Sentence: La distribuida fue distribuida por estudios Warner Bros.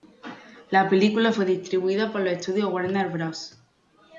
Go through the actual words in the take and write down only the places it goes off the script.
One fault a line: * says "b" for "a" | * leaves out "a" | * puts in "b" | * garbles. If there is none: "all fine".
* says "película" for "distribuida"
* puts in "los"